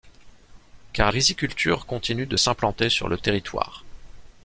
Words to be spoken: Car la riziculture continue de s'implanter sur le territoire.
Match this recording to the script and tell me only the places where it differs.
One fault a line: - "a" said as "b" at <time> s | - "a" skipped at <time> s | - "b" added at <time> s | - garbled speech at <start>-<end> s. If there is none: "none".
- "la" skipped at 1.1 s